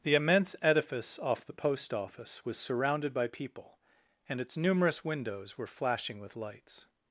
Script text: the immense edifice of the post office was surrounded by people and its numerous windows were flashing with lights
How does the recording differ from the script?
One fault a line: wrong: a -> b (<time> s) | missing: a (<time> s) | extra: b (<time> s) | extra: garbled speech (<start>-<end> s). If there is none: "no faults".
wrong: of -> off (1.2 s)